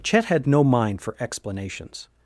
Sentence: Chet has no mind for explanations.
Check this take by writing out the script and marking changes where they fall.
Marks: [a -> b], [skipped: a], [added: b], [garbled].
Chet [has -> had] no mind for explanations.